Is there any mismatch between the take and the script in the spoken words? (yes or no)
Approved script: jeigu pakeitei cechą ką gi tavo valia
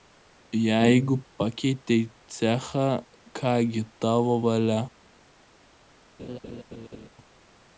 no